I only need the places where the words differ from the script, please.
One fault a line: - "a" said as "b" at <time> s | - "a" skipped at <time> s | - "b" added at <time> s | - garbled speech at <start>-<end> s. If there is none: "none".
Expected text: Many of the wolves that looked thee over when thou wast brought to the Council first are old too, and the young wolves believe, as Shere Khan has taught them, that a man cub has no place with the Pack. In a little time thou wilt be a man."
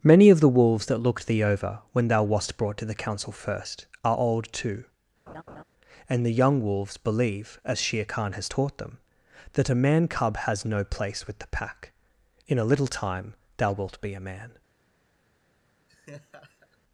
none